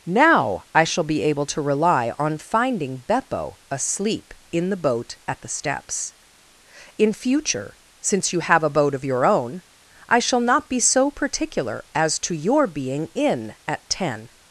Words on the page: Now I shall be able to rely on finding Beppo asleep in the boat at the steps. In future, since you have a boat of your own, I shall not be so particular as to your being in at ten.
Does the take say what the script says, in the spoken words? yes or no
yes